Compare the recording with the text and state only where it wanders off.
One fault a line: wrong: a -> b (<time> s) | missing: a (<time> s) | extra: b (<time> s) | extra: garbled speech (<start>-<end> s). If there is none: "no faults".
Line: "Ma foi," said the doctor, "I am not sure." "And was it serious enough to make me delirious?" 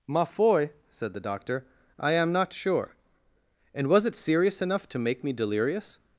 no faults